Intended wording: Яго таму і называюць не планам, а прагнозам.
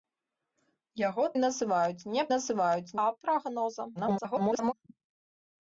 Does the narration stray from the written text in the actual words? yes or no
yes